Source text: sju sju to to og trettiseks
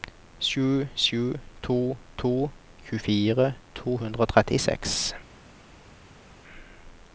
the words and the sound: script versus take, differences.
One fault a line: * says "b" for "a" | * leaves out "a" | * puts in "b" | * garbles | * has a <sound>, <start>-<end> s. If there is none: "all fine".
* puts in "tjuefire to hundre"